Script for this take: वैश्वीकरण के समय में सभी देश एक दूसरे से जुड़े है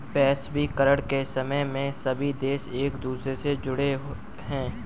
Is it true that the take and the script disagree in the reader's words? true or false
false